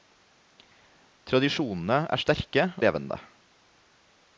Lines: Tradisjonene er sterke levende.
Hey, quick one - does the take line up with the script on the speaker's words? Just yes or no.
yes